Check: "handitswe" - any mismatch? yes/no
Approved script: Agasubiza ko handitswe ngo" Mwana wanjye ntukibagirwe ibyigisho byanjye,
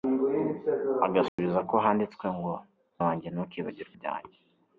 no